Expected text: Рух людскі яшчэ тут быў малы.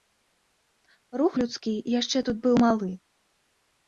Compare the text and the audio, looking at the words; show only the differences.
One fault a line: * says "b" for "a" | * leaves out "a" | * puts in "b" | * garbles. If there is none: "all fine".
all fine